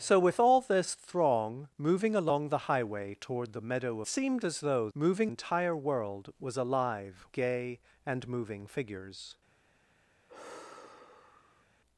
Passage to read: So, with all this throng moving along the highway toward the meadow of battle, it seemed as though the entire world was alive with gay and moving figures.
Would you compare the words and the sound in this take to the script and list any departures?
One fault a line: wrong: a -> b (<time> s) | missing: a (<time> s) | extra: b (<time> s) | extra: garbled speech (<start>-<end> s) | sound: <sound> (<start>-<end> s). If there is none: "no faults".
missing: of battle it (4.0 s)
wrong: the -> moving (4.9 s)
missing: with (7.2 s)
sound: sigh (10.3-11.7 s)